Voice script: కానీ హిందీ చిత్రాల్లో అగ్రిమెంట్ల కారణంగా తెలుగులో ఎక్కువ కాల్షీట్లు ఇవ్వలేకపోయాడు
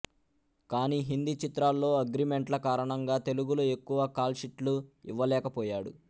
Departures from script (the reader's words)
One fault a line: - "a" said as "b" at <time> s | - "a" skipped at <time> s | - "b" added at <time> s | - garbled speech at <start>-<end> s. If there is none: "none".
none